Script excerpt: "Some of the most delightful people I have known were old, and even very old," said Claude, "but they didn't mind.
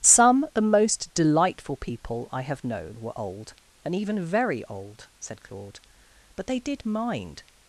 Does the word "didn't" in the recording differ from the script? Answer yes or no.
yes